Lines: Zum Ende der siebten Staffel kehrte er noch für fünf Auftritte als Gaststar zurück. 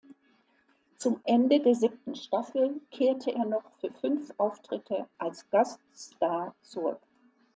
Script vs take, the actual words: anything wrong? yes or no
no